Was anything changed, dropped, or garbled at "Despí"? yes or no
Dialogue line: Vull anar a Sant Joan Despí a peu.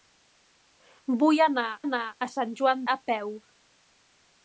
yes